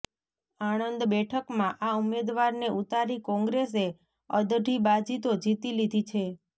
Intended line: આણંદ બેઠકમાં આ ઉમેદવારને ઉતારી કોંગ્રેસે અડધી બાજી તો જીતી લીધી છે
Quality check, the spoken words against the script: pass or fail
pass